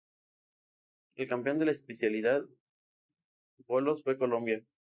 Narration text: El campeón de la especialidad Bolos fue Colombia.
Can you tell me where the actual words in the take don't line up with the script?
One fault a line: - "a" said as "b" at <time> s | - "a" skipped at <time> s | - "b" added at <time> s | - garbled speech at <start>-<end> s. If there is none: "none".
none